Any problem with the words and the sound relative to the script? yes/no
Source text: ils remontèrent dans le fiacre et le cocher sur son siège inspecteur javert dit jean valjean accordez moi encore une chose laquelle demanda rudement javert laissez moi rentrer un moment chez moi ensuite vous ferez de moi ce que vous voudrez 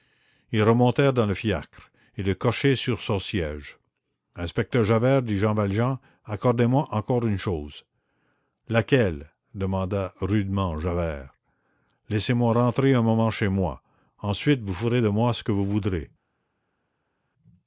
no